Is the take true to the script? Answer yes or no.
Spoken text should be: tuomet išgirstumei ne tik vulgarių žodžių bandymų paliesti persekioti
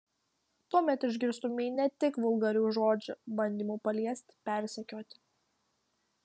yes